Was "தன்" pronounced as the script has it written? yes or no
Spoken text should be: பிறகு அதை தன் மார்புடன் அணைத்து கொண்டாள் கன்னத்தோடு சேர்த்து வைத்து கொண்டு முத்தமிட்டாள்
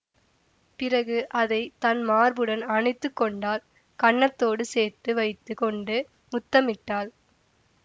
yes